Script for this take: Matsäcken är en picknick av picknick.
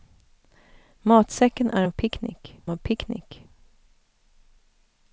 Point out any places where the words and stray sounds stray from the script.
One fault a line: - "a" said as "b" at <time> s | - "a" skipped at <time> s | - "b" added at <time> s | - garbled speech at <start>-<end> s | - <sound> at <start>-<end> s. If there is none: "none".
none